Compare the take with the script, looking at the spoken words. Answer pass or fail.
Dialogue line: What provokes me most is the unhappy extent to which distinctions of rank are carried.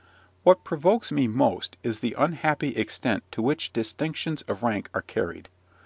pass